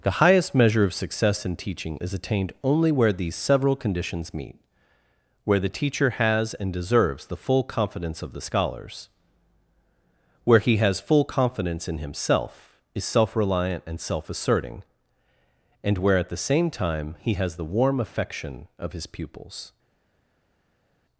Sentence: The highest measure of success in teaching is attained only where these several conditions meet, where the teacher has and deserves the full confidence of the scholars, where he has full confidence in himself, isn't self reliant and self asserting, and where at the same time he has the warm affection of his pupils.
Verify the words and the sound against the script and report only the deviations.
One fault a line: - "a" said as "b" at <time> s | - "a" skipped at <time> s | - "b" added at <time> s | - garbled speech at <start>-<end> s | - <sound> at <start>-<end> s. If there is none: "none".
- "isn't" said as "is" at 12.9 s